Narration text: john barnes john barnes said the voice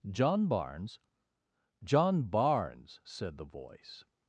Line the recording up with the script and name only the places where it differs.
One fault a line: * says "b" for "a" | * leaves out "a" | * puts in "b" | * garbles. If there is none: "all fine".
all fine